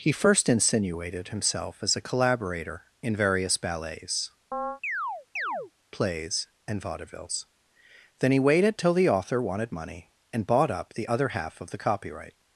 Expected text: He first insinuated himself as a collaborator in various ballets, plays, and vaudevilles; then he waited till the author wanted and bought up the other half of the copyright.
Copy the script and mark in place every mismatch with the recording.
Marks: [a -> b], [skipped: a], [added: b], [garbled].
He first insinuated himself as a collaborator in various ballets, plays, and vaudevilles; then he waited till the author wanted [added: money] and bought up the other half of the copyright.